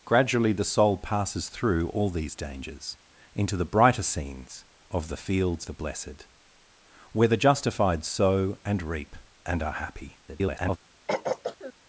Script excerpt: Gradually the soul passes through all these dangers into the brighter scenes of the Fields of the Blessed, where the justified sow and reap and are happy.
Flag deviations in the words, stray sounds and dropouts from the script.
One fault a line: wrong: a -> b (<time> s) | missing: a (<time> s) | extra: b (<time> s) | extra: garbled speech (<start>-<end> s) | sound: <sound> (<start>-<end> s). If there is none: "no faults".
missing: of (5.7 s)
extra: garbled speech (10.3-10.8 s)
sound: throat clearing (11.1-11.7 s)